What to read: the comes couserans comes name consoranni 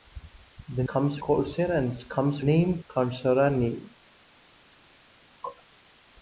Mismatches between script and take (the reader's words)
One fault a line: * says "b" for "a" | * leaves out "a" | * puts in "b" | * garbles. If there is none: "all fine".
all fine